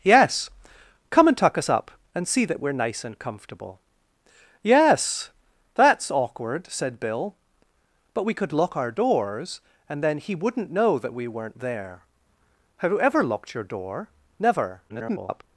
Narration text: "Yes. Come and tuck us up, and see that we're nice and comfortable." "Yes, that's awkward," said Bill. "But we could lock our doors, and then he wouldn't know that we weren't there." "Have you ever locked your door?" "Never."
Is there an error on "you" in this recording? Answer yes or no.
no